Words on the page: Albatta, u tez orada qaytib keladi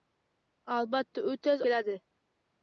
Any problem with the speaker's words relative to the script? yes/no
yes